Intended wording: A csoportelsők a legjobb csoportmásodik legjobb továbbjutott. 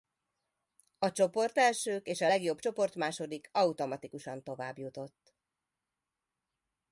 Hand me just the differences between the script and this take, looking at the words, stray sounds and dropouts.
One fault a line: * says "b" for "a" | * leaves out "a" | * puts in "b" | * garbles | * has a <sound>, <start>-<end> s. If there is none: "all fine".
* puts in "és"
* says "automatikusan" for "legjobb"